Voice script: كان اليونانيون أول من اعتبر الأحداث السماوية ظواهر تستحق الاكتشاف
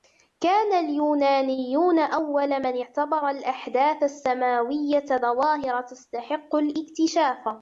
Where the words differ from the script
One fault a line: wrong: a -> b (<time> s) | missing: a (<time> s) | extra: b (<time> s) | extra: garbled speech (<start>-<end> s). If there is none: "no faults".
no faults